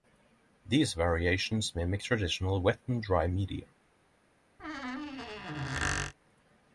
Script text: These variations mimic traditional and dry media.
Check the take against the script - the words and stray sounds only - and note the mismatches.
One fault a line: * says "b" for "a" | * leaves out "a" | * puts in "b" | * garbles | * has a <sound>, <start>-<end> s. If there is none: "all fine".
* puts in "wet"
* has a squeak, 4.6-6.1 s